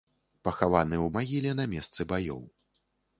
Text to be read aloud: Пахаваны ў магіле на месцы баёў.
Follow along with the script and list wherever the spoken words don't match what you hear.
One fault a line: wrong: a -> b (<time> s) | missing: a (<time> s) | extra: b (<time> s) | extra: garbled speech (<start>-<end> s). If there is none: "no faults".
no faults